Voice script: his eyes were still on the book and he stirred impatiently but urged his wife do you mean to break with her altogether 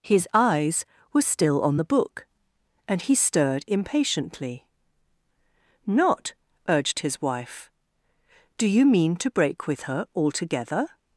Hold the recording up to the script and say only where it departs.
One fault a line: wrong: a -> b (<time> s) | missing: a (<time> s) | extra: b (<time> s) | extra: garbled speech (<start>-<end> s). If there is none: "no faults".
wrong: but -> not (5.9 s)